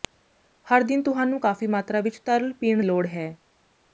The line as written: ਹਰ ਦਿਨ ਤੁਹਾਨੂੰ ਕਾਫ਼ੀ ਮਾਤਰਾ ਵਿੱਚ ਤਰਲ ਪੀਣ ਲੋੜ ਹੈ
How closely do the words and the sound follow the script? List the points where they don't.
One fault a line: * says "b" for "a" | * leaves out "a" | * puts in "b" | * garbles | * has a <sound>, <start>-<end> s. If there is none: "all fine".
all fine